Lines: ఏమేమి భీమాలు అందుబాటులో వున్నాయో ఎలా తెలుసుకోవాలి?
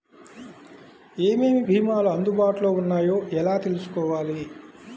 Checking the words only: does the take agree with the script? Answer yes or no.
yes